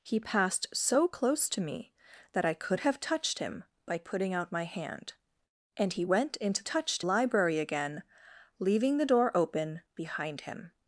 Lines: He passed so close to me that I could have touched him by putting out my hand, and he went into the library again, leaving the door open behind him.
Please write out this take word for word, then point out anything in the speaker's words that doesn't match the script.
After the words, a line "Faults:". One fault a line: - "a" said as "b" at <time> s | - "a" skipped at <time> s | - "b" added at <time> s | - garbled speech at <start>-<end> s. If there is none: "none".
He passed so close to me that I could have touched him by putting out my hand, and he went into touched library again, leaving the door open behind him.
Faults:
- "the" said as "touched" at 6.6 s